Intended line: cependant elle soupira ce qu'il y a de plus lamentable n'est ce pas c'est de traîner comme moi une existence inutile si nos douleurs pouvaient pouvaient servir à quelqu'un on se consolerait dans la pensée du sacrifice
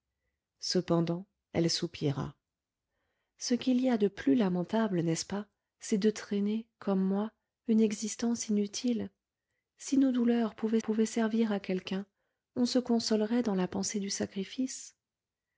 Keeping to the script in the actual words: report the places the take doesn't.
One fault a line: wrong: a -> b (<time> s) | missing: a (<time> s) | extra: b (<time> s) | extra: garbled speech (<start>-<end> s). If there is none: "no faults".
no faults